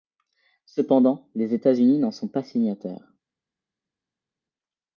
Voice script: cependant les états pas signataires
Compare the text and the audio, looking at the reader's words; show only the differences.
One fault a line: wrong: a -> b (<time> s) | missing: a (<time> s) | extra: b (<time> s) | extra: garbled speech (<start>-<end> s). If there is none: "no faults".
extra: unis n'en sont (1.7 s)